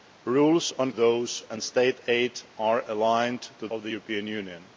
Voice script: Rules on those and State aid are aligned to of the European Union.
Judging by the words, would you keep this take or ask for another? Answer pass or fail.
pass